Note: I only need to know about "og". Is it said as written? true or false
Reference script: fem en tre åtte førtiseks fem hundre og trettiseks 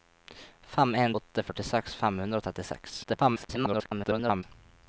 true